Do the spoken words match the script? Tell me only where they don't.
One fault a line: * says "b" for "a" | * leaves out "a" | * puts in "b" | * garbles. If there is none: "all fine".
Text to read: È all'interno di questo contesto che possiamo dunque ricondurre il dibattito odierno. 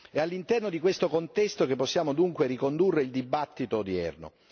all fine